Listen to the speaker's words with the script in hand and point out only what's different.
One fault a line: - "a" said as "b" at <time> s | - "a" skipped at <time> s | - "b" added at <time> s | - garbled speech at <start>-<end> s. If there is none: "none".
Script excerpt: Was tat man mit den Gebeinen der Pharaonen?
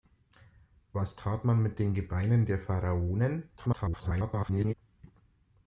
- garbled speech at 3.6-4.7 s